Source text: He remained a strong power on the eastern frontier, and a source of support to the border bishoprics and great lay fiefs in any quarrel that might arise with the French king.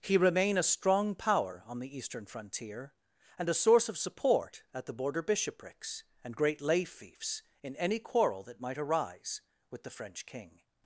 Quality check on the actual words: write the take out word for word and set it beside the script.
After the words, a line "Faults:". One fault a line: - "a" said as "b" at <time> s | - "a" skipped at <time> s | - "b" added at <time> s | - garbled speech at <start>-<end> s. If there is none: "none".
He remain a strong power on the eastern frontier, and a source of support at the border bishoprics and great lay fiefs in any quarrel that might arise with the French king.
Faults:
- "remained" said as "remain" at 0.2 s
- "to" said as "at" at 4.7 s